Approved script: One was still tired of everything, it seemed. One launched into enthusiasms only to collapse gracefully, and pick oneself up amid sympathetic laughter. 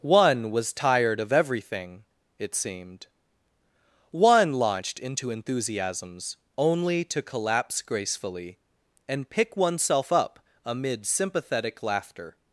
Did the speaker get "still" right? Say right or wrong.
wrong